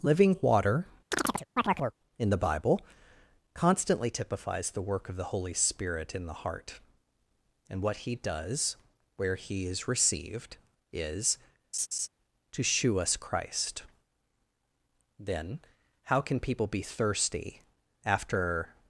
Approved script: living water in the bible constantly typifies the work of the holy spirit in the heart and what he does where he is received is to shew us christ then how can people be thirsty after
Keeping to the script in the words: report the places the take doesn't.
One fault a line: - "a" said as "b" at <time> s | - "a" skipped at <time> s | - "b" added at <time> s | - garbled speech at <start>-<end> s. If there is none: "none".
none